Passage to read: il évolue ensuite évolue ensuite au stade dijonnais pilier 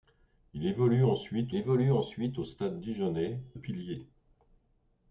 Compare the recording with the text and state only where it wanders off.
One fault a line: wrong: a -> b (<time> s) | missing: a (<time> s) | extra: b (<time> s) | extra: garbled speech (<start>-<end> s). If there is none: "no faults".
no faults